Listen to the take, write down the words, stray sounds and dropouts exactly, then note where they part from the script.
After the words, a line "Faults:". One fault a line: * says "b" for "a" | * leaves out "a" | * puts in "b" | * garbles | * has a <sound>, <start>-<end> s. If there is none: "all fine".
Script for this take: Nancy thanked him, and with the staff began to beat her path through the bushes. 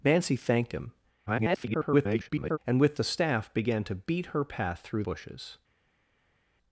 Nancy thanked him, [garbled] and with the staff began to beat her path through bushes.
Faults:
* garbles
* leaves out "the"